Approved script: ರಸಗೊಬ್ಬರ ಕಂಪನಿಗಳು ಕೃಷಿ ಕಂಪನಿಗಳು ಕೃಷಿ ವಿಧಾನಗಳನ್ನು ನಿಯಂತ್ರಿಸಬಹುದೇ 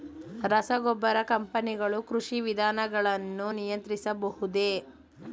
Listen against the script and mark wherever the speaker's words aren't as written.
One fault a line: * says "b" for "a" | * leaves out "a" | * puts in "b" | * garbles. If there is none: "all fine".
* leaves out "ಕಂಪನಿಗಳು ಕೃಷಿ"